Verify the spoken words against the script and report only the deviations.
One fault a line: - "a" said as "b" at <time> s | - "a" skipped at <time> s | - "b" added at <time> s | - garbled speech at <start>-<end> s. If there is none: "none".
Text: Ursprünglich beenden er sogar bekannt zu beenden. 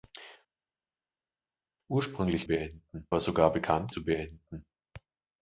none